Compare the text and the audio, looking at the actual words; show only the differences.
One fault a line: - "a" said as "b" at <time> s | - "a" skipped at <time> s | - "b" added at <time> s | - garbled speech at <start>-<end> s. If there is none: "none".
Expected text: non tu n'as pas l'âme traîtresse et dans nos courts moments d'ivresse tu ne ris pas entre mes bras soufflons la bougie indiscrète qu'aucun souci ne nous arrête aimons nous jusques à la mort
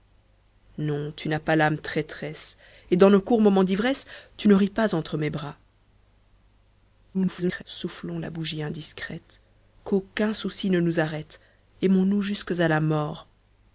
- garbled speech at 7.1-7.6 s